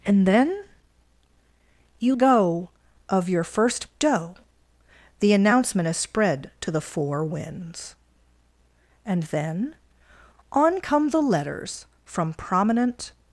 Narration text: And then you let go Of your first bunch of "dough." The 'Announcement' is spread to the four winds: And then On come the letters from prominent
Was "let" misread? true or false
true